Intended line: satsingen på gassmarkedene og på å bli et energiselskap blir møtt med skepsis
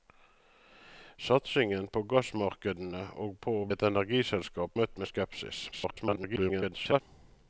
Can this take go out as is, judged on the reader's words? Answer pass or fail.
fail